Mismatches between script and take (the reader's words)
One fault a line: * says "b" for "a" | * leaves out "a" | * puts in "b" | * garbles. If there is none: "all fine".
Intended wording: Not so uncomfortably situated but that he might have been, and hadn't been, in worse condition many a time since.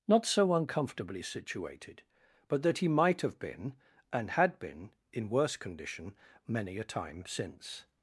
* says "had" for "hadn't"